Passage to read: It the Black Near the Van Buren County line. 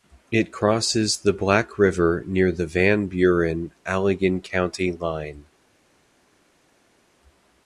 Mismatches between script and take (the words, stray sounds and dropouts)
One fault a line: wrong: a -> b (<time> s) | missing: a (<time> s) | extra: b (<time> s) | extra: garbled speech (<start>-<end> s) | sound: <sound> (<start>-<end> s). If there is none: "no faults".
extra: crosses (0.5 s)
extra: River (1.8 s)
extra: Allegan (3.9 s)